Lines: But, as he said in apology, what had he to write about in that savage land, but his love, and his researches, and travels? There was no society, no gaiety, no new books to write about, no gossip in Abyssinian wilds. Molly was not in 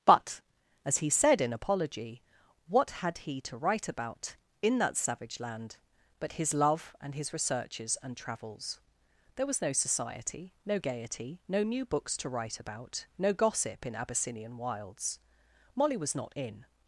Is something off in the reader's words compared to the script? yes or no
no